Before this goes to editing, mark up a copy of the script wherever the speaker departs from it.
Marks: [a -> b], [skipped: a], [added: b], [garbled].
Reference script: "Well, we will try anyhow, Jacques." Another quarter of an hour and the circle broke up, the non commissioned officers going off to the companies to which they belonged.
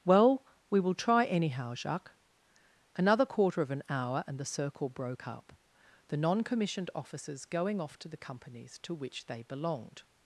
"Well, we will try anyhow, Jacques." Another quarter of an hour and the circle broke up, the non commissioned officers going off to the companies to which they belonged.